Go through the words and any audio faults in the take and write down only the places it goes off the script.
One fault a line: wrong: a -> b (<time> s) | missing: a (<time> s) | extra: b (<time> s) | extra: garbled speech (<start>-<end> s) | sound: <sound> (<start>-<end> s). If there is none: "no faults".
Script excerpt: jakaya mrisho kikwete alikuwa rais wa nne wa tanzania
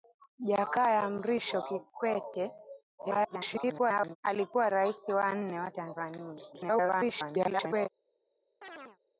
extra: garbled speech (3.0-4.2 s)
extra: garbled speech (6.5-7.9 s)
sound: chirp (8.6-9.0 s)